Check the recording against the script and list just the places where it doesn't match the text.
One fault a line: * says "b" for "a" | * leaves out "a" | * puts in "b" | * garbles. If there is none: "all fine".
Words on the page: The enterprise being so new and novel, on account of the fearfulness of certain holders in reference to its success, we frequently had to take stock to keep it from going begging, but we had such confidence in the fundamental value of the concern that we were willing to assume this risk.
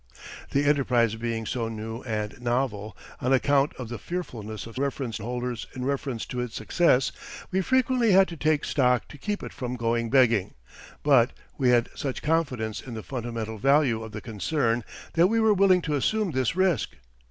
* says "reference" for "certain"